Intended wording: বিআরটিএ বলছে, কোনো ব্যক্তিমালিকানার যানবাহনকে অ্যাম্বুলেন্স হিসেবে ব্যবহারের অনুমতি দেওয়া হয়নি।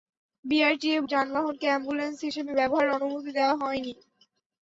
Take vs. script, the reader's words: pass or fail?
fail